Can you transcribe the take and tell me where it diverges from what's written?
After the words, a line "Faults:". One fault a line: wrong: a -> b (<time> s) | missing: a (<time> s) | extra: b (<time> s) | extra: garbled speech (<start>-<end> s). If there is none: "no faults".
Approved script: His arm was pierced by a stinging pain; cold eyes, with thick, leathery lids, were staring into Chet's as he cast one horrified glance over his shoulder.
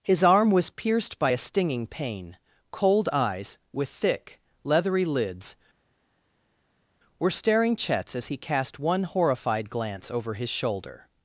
His arm was pierced by a stinging pain; cold eyes, with thick, leathery lids, were staring Chet's as he cast one horrified glance over his shoulder.
Faults:
missing: into (7.8 s)